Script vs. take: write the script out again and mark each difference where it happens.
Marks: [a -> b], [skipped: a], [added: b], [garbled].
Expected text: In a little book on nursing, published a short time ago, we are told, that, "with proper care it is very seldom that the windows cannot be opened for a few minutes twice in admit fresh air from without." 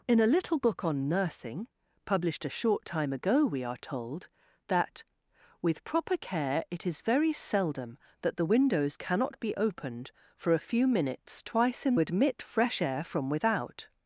In a little book on nursing, published a short time ago, we are told, that, "with proper care it is very seldom that the windows cannot be opened for a few minutes twice in admit fresh air from without."